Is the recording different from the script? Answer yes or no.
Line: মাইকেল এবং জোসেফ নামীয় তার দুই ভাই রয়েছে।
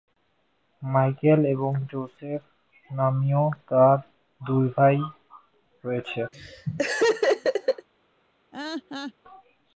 no